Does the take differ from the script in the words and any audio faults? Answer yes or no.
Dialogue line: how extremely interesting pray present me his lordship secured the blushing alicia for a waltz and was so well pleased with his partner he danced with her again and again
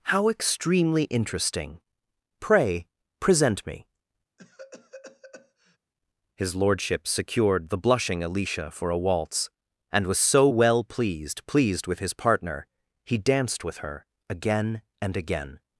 yes